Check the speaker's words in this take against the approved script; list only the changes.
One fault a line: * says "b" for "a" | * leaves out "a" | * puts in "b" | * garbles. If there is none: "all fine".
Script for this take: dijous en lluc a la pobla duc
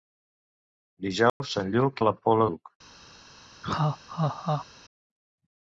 all fine